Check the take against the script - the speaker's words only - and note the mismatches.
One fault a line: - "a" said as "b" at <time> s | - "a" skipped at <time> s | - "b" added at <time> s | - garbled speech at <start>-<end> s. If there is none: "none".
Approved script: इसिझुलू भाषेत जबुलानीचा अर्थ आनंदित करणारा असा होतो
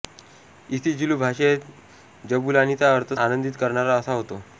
none